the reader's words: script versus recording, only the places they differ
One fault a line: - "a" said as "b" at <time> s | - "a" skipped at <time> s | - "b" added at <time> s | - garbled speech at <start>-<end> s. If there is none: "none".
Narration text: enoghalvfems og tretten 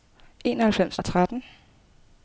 none